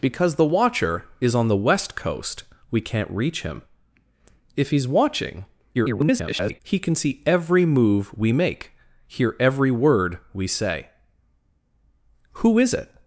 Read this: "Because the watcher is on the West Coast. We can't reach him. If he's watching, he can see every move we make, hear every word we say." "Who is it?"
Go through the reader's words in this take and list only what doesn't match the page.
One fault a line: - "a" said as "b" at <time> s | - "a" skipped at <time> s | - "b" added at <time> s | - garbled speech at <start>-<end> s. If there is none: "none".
- garbled speech at 5.7-6.6 s